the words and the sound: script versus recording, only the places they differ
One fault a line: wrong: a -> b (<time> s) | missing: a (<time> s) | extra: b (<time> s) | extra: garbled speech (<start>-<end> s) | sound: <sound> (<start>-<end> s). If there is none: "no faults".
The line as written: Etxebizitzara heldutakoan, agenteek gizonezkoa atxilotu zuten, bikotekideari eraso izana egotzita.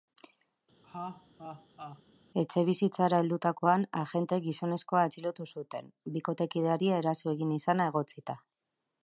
sound: laugh (0.8-2.0 s)
extra: egin (7.4 s)